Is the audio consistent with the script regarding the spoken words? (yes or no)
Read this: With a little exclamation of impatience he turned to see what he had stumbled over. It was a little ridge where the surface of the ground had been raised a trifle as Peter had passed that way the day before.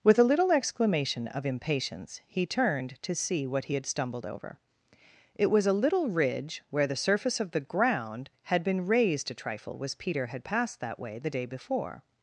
yes